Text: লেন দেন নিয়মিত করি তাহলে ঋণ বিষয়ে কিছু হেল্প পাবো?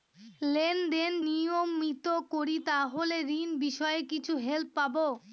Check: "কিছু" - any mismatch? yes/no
no